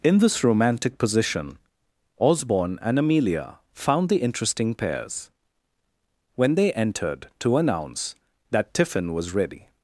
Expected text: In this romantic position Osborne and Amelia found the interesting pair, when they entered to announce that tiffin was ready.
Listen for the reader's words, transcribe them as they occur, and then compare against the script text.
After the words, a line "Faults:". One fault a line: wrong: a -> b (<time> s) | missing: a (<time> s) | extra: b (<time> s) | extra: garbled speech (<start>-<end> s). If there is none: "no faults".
In this romantic position Osborne and Amelia found the interesting pairs, when they entered to announce that tiffin was ready.
Faults:
wrong: pair -> pairs (4.7 s)